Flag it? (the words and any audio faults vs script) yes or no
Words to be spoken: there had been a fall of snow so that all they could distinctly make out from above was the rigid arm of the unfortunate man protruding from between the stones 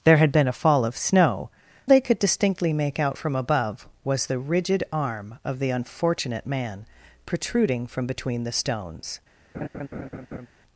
yes